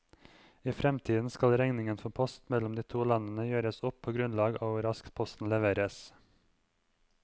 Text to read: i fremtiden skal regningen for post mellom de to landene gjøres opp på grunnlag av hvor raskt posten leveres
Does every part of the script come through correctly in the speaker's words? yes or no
yes